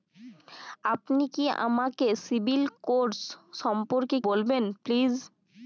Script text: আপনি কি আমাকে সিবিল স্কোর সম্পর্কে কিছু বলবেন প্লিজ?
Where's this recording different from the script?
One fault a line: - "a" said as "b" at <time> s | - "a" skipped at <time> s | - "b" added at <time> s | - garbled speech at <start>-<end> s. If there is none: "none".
- "কিছু" skipped at 4.2 s